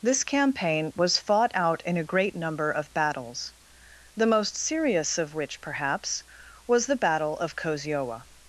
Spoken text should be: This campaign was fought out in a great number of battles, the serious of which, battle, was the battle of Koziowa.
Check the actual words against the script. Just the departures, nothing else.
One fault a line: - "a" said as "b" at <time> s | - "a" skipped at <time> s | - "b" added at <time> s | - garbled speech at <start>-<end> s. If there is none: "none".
- "most" added at 4.3 s
- "battle" said as "perhaps" at 5.6 s